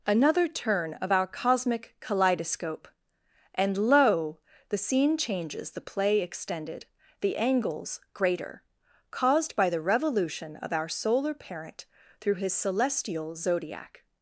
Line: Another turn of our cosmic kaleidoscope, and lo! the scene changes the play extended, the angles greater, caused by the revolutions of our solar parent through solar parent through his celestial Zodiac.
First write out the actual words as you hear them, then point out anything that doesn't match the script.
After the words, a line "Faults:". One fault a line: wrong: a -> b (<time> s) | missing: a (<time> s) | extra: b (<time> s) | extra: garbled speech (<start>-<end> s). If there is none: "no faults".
Another turn of our cosmic kaleidoscope, and lo! the scene changes the play extended, the angles greater, caused by the revolution of our solar parent through his celestial Zodiac.
Faults:
wrong: revolutions -> revolution (9.8 s)
missing: solar parent through (12.4 s)